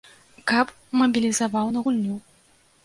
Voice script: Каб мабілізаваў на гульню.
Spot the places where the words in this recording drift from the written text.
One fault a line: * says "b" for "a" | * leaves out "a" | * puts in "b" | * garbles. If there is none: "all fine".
all fine